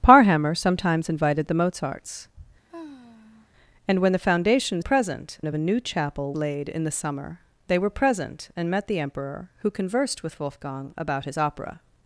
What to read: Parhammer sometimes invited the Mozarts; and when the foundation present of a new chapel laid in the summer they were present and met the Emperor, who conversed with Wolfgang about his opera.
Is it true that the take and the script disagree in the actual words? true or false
false